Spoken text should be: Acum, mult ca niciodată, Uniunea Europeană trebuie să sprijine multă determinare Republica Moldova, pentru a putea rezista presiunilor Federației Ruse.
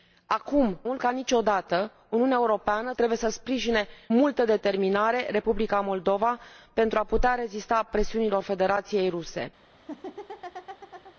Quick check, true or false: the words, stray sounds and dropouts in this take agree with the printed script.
false